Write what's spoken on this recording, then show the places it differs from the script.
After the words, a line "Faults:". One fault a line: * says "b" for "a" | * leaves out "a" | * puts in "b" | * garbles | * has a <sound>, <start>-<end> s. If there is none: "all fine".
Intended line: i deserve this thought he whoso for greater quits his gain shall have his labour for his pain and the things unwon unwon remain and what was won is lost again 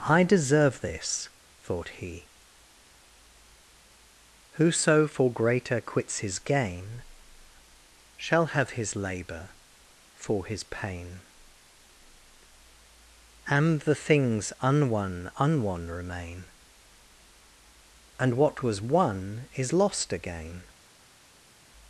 i deserve this thought he whoso for greater quits his gain shall have his labour for his pain and the things unwon unwon remain and what was won is lost again
Faults:
all fine